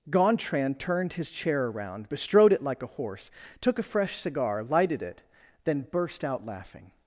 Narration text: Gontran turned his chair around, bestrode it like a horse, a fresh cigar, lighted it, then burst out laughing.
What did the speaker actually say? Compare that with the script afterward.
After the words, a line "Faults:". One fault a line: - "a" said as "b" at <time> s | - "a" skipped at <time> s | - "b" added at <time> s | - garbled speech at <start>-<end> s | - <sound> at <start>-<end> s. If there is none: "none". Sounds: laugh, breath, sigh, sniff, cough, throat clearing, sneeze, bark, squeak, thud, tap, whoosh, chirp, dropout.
Gontran turned his chair around, bestrode it like a horse, took a fresh cigar, lighted it, then burst out laughing.
Faults:
- "took" added at 3.6 s